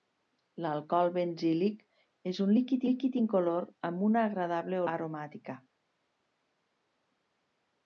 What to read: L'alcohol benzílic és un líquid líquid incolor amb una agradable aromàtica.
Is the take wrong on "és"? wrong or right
right